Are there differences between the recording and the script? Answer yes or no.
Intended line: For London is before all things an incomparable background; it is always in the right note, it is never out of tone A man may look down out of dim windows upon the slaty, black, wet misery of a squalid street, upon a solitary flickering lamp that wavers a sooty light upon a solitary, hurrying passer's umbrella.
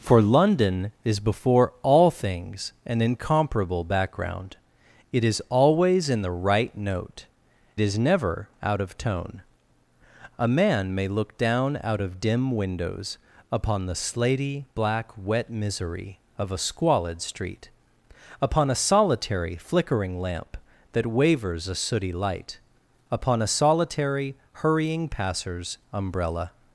yes